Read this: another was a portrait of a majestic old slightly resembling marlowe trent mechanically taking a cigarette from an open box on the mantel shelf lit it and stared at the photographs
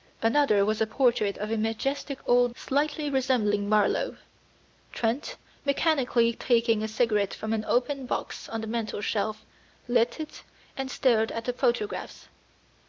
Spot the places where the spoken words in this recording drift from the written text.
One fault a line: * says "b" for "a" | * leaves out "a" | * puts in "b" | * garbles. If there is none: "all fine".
all fine